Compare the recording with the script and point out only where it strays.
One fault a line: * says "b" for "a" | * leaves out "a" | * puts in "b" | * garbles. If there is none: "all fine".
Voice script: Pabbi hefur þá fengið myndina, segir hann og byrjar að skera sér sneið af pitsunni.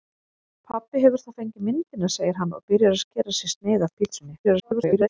* garbles